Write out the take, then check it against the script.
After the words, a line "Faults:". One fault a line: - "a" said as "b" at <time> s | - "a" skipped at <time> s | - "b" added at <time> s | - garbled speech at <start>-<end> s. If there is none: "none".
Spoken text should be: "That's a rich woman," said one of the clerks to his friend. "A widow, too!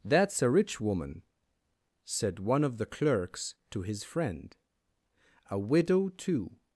"That's a rich woman," said one of the clerks to his friend. "A widow, too!
Faults:
none